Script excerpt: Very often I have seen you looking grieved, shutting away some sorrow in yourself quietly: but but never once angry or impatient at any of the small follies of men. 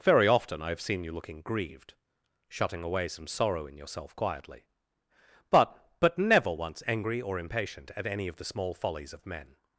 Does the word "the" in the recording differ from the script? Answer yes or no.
no